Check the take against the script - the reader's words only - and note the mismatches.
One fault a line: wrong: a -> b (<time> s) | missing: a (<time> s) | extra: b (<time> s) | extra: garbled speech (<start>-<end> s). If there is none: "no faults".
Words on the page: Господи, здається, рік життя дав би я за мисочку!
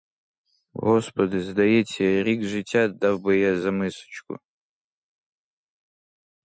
no faults